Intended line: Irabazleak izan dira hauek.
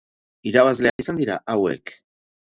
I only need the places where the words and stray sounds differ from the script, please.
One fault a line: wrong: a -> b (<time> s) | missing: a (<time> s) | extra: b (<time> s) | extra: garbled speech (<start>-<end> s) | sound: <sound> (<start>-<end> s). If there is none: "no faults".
sound: dropout (0.9-1.0 s)